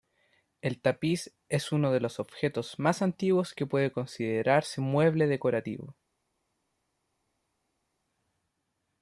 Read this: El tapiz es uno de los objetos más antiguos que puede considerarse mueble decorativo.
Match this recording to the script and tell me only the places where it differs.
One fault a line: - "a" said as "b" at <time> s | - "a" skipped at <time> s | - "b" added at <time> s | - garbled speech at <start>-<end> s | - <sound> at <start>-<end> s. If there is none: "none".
none